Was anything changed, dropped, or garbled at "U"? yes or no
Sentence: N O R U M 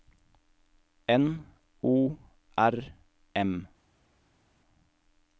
yes